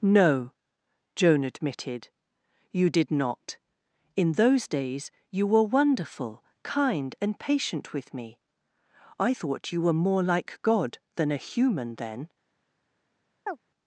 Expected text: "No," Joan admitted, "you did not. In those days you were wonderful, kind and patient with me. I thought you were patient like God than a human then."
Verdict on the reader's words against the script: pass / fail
fail